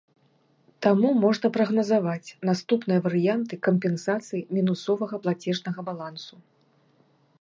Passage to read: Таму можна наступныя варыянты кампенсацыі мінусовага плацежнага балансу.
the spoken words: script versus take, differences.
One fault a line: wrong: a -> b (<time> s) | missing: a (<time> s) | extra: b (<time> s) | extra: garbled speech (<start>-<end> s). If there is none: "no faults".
extra: прагназаваць (1.6 s)